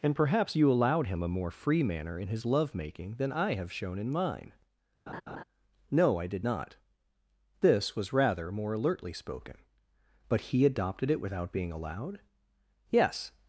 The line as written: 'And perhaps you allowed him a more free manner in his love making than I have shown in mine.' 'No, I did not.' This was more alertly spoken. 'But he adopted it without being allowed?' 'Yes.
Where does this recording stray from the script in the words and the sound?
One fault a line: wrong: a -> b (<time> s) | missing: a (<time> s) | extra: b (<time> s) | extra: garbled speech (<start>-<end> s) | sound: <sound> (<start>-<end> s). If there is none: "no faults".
sound: laugh (5.1-5.4 s)
extra: rather (8.1 s)